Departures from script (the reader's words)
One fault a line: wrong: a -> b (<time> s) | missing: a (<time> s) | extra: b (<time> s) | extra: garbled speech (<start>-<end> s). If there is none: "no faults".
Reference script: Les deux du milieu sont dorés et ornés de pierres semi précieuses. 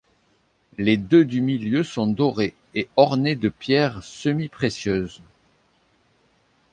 no faults